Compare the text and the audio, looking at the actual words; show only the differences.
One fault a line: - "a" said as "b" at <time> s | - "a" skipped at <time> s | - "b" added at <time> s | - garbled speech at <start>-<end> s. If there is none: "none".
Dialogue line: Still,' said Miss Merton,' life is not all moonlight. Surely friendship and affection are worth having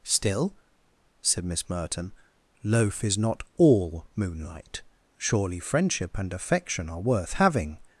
- "life" said as "loaf" at 2.6 s